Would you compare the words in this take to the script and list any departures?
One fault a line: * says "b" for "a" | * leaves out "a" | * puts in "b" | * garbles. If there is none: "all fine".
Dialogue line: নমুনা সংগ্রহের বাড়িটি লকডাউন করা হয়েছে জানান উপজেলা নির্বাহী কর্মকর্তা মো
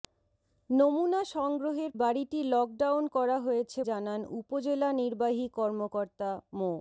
all fine